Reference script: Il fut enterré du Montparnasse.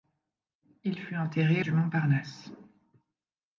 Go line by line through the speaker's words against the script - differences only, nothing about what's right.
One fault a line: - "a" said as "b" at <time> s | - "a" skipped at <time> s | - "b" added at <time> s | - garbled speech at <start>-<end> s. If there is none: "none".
none